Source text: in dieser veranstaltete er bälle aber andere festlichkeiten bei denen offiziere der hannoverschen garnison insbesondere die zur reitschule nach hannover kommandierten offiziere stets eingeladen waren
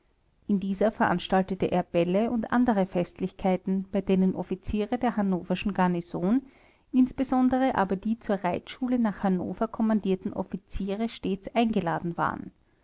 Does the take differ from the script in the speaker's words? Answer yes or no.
yes